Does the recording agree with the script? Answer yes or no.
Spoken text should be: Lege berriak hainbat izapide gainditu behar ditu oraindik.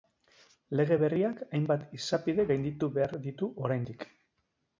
yes